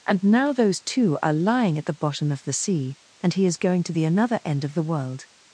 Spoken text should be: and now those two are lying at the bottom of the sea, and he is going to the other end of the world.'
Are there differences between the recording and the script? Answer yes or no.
yes